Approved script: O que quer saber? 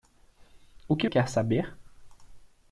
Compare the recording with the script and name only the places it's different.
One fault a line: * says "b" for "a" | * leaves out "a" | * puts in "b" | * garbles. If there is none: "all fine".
all fine